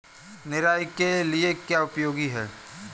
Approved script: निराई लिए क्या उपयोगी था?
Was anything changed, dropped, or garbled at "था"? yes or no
yes